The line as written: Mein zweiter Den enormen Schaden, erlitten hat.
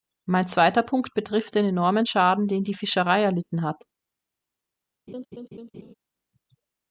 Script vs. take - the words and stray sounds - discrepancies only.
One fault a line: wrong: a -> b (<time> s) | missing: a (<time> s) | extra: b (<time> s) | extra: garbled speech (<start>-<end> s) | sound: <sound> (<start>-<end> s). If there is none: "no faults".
extra: Punkt betrifft (0.8 s)
extra: den die Fischerei (2.5 s)
sound: laugh (5.1-5.9 s)